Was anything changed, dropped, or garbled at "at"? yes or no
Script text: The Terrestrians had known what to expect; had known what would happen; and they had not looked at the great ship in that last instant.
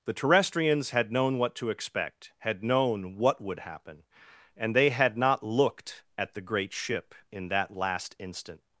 no